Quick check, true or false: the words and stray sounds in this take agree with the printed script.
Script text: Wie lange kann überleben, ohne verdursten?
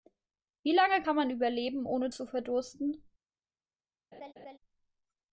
false